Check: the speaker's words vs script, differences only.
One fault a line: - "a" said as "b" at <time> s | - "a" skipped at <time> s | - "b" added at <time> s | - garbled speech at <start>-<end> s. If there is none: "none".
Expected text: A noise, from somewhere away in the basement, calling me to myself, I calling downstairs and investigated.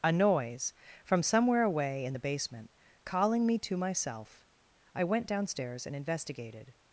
- "calling" said as "went" at 5.0 s